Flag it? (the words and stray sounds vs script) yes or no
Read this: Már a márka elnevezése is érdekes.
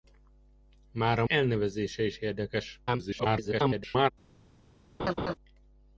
yes